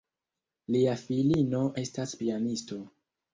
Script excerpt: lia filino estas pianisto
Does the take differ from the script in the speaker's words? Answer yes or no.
no